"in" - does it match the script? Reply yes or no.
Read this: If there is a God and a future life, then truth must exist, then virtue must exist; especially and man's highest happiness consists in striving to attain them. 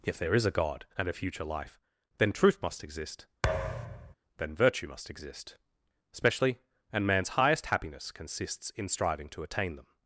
yes